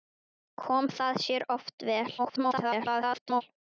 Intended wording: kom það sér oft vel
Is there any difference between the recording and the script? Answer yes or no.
yes